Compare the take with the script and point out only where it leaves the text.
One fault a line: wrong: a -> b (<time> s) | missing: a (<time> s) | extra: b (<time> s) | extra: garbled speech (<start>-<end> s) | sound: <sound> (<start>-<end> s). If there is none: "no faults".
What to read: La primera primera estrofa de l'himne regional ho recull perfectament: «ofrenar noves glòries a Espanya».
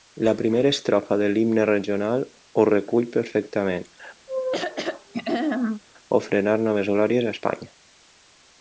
missing: primera (0.7 s)
sound: throat clearing (4.3-5.8 s)